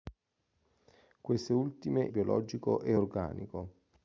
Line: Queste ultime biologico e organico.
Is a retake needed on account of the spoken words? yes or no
no